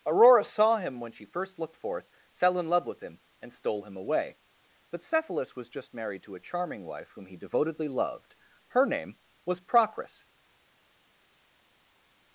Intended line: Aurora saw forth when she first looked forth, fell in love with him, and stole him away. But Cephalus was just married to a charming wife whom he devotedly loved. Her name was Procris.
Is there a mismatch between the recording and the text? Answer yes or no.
yes